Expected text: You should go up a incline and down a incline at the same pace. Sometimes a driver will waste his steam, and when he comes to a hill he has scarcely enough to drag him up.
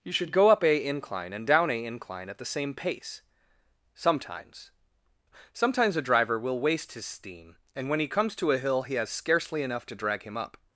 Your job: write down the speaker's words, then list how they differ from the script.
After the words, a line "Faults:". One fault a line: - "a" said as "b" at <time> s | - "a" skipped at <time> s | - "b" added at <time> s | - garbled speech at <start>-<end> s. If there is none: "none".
You should go up a incline and down a incline at the same pace. Sometimes Sometimes a driver will waste his steam, and when he comes to a hill he has scarcely enough to drag him up.
Faults:
- "Sometimes" added at 5.5 s